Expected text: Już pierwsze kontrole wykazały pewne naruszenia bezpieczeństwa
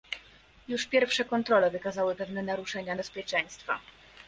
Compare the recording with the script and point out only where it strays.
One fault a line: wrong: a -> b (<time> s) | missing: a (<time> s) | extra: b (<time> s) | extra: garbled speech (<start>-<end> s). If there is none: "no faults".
no faults